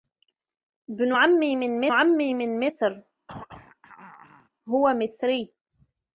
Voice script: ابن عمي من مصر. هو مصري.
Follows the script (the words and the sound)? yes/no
no